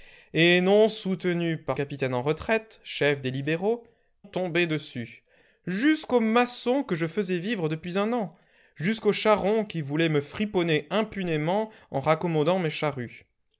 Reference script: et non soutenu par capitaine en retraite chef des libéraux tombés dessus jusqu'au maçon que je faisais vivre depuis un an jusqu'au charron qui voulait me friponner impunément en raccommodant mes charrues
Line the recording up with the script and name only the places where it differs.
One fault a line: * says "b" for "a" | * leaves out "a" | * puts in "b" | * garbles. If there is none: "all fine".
all fine